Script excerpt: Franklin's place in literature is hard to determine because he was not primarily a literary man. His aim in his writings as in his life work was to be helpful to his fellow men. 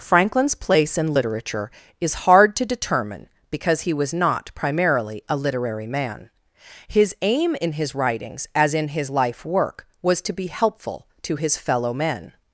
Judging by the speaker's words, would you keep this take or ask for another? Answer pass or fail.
pass